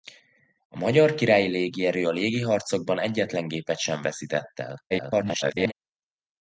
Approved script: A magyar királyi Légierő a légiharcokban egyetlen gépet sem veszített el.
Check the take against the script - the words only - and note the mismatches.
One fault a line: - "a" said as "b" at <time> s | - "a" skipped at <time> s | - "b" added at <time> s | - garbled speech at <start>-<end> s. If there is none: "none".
- garbled speech at 4.9-5.7 s